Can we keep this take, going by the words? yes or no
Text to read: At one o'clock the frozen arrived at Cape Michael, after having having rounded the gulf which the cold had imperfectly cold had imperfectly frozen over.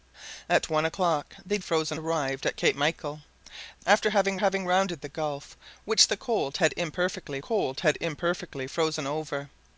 yes